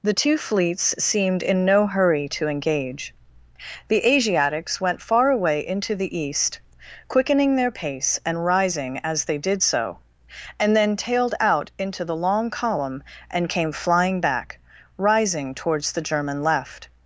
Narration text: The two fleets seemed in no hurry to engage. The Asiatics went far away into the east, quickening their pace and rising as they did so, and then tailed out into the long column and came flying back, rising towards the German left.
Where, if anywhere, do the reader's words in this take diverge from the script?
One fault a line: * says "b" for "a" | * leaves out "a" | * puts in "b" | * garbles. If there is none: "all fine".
all fine